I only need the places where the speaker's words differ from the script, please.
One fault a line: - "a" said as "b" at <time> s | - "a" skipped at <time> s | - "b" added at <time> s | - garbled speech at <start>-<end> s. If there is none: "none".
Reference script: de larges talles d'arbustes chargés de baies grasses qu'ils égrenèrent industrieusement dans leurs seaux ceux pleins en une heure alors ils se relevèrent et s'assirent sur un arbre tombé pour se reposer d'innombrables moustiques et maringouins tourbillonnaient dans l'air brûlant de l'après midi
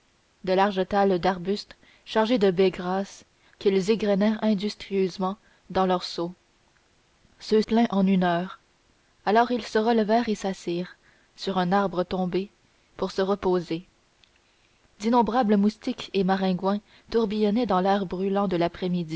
none